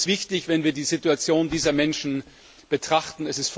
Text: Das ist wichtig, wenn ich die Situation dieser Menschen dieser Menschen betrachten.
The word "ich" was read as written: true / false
false